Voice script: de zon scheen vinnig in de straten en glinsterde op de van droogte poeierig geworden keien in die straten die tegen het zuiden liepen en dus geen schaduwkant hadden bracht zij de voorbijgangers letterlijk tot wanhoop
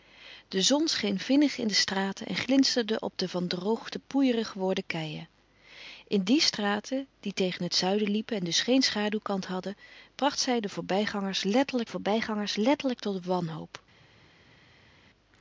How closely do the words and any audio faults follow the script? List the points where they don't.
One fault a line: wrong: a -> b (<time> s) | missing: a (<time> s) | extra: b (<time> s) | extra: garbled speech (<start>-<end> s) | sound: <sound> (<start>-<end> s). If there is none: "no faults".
extra: voorbijgangers letterlijk (11.9 s)